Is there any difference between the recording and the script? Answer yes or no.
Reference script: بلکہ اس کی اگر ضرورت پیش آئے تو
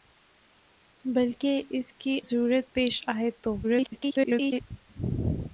yes